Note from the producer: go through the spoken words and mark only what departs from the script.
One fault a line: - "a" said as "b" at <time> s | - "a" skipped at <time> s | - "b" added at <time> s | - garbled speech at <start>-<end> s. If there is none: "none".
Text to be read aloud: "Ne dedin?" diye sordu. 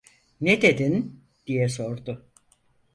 none